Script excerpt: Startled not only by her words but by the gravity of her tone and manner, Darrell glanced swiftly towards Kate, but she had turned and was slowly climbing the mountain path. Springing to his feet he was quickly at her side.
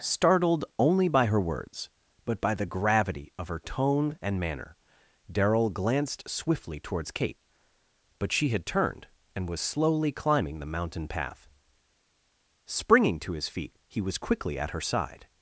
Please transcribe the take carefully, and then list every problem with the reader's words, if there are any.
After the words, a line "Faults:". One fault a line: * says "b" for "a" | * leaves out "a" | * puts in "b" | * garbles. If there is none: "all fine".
Startled only by her words but by the gravity of her tone and manner, Darrell glanced swiftly towards Kate, but she had turned and was slowly climbing the mountain path. Springing to his feet he was quickly at her side.
Faults:
* leaves out "not"